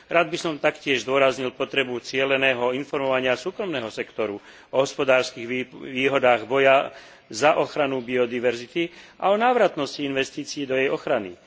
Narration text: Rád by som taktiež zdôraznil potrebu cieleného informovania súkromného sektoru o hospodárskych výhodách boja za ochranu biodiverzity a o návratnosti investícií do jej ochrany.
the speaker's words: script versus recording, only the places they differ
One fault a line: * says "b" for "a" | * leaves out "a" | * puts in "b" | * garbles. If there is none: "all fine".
all fine